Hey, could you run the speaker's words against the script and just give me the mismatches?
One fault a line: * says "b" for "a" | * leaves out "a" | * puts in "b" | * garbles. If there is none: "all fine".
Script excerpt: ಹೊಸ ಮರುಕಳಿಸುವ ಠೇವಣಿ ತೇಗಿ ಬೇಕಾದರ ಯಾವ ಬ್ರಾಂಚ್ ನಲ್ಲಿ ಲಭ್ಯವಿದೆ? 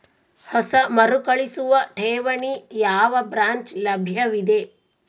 * leaves out "ತೇಗಿ ಬೇಕಾದರ"
* leaves out "ನಲ್ಲಿ"